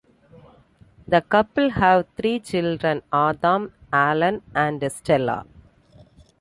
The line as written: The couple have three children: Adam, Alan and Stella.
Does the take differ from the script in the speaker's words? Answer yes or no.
no